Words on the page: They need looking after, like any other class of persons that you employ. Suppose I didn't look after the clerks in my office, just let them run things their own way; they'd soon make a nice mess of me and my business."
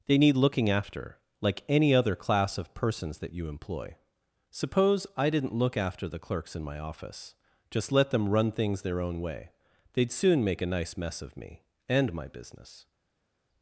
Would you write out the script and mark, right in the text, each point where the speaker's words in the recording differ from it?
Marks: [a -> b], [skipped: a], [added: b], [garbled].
They need looking after, like any other class of persons that you employ. Suppose I didn't look after the clerks in my office, just let them run things their own way; they'd soon make a nice mess of me and my business."